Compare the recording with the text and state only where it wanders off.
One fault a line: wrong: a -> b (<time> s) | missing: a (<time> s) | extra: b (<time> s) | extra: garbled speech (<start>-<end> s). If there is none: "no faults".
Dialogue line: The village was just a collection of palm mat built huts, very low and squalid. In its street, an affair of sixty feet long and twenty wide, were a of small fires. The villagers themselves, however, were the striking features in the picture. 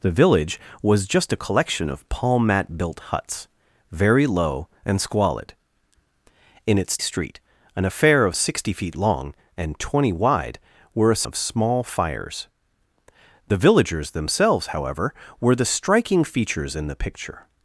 no faults